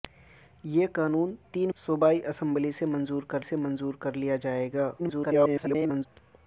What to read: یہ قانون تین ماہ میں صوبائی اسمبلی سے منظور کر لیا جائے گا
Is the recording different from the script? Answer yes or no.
yes